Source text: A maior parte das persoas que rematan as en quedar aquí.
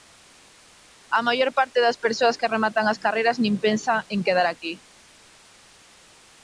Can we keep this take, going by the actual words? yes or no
no